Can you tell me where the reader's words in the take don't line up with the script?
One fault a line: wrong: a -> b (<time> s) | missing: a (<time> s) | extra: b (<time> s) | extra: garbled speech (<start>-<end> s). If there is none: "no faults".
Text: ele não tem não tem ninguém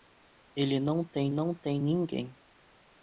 no faults